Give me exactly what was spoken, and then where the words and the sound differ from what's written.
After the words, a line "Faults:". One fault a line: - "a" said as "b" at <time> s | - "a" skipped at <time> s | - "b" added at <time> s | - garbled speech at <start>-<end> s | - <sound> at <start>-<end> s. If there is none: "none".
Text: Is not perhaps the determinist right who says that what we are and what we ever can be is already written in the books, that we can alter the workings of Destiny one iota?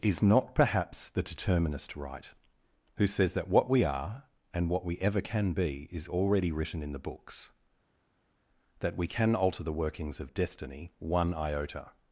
Is not perhaps the determinist right who says that what we are and what we ever can be is already written in the books, that we can alter the workings of Destiny one iota?
Faults:
none